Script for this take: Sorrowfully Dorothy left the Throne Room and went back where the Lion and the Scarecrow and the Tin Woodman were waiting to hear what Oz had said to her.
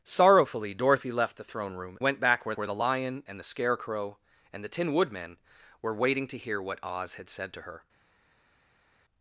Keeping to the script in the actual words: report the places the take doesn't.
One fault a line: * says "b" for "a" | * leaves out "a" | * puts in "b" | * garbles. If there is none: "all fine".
* leaves out "and"
* puts in "where"